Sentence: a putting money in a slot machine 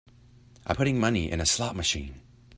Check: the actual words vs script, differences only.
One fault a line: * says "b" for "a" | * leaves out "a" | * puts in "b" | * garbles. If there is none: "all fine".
all fine